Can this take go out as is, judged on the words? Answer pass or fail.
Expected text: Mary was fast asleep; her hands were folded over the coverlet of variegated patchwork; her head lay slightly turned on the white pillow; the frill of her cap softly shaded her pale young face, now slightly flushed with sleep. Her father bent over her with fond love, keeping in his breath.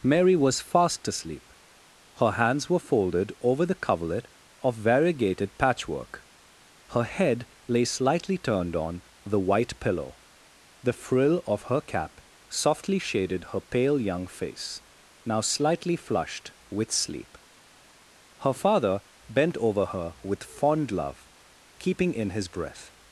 pass